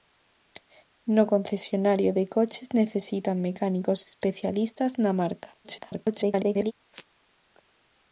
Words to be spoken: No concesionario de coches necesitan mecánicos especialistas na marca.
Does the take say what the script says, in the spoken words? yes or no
no